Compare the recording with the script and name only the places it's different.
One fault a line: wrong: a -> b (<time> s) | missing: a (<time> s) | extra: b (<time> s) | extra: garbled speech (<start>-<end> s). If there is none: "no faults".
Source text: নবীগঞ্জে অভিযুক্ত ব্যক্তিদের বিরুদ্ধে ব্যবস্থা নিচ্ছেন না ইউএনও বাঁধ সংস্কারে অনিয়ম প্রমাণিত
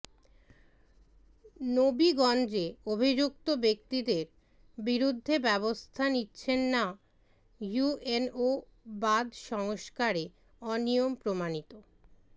no faults